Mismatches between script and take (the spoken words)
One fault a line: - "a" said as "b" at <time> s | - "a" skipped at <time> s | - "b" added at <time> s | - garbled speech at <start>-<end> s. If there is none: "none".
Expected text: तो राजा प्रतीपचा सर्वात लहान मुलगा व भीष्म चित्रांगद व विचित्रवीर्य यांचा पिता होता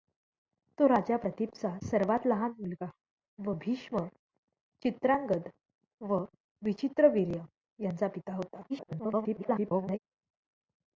- garbled speech at 8.7-10.0 s